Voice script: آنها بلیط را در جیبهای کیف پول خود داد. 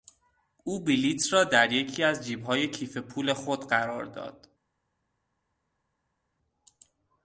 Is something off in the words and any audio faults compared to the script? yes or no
yes